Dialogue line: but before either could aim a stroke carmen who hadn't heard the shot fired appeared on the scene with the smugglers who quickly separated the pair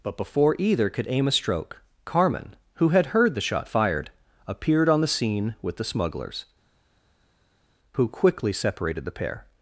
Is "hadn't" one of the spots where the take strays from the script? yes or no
yes